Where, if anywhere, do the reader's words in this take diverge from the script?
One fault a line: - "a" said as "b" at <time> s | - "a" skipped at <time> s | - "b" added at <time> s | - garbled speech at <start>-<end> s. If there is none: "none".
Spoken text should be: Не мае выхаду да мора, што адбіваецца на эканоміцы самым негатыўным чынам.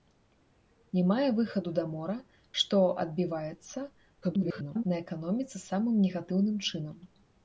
- garbled speech at 4.2-4.8 s